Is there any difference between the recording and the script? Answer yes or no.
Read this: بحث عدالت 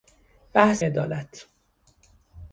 no